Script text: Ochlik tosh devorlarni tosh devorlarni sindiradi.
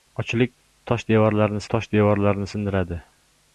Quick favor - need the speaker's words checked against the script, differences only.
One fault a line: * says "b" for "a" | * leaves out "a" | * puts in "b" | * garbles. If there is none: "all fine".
all fine